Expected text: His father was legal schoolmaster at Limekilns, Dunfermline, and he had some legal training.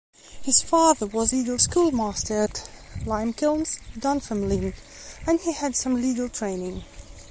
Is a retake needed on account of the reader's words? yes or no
no